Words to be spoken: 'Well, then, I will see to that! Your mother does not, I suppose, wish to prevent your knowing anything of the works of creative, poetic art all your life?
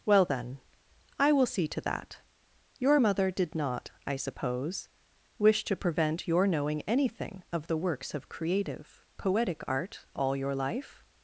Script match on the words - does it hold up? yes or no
no